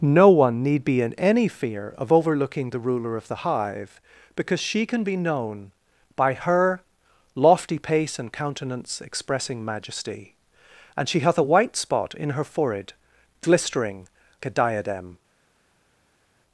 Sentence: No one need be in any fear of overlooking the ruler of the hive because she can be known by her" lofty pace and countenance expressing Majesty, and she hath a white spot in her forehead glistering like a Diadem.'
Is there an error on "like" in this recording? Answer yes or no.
yes